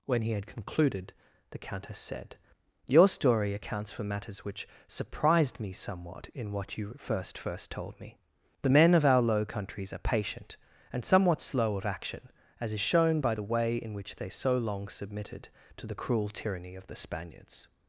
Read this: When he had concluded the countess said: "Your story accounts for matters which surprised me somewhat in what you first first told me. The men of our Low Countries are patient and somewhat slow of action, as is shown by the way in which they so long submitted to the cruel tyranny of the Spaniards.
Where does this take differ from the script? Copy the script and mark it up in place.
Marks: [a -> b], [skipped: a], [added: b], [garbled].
When he had concluded the countess said: "Your story accounts for matters which surprised me somewhat in what you first first told me. The men of our Low Countries are patient and somewhat slow of action, as is shown by the way in which they so long submitted to the cruel tyranny of the Spaniards.